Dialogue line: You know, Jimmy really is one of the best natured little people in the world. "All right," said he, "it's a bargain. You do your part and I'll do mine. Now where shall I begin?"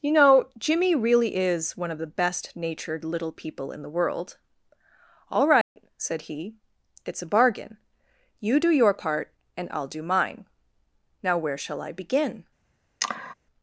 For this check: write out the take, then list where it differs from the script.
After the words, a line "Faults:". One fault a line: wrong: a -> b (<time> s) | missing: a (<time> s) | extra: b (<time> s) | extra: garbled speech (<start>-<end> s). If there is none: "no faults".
You know, Jimmy really is one of the best natured little people in the world. "All right," said he, "it's a bargain. You do your part and I'll do mine. Now where shall I begin?"
Faults:
no faults